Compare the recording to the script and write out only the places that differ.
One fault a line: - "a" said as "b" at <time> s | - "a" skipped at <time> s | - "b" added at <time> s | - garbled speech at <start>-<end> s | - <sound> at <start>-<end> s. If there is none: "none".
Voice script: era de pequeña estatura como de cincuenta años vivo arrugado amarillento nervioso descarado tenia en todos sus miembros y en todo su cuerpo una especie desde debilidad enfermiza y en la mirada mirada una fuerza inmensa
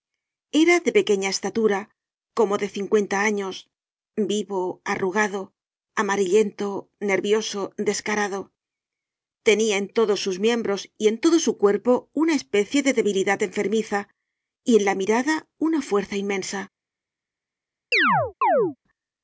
- "desde" said as "de" at 12.8 s
- "mirada" skipped at 15.3 s
- chirp at 17.9-18.8 s